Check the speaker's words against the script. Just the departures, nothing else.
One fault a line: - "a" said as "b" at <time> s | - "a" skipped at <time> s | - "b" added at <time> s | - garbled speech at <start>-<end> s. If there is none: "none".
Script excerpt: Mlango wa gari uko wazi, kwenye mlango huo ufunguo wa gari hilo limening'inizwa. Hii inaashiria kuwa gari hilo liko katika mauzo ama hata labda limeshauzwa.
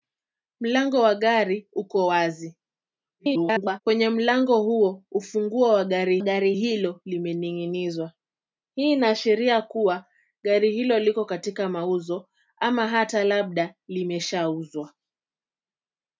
- garbled speech at 3.2-3.8 s
- "gari" added at 6.2 s